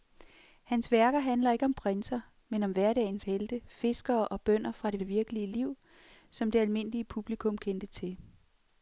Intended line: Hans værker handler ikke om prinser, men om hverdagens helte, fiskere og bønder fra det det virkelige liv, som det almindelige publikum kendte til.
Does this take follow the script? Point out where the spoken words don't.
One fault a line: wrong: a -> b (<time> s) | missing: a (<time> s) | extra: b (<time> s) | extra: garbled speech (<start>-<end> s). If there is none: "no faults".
no faults